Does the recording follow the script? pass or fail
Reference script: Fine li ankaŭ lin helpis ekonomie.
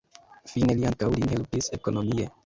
pass